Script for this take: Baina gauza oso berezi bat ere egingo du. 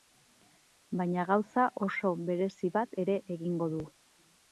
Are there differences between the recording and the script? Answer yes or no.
no